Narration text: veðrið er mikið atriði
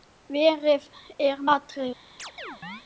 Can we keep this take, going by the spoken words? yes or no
no